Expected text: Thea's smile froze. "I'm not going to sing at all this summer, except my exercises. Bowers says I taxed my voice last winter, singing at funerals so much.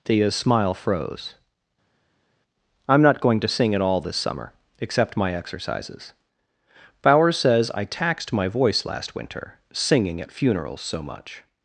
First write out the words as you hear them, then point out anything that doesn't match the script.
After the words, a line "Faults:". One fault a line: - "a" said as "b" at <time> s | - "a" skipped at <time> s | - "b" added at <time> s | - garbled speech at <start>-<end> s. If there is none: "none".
Thea's smile froze. "I'm not going to sing at all this summer, except my exercises. Bowers says I taxed my voice last winter, singing at funerals so much.
Faults:
none